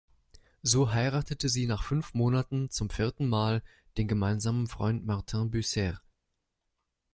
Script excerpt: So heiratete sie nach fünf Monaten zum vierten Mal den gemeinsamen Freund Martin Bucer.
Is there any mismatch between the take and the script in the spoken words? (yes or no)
no